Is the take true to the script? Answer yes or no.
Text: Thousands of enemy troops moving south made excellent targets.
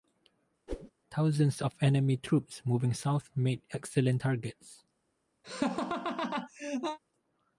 yes